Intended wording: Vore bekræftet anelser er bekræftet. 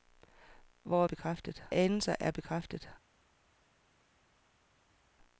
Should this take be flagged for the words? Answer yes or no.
no